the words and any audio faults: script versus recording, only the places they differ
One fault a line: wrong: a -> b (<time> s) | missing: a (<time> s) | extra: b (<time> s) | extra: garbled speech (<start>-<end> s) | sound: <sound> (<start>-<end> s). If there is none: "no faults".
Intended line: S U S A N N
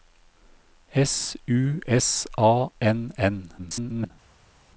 extra: garbled speech (3.6-4.1 s)